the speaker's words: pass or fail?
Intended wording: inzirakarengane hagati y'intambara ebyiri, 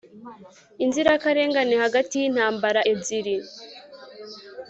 pass